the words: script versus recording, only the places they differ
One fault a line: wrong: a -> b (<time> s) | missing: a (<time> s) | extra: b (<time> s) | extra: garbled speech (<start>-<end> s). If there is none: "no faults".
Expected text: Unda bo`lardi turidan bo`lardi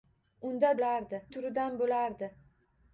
no faults